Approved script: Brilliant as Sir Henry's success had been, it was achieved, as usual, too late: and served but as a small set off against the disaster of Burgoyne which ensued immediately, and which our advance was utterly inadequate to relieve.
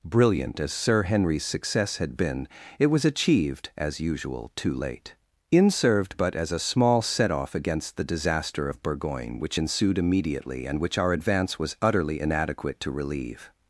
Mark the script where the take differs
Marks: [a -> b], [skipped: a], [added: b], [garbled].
Brilliant as Sir Henry's success had been, it was achieved, as usual, too late: [and -> in] served but as a small set off against the disaster of Burgoyne which ensued immediately, and which our advance was utterly inadequate to relieve.